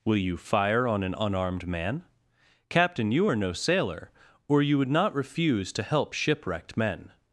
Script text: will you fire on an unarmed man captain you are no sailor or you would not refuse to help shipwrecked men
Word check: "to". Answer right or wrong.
right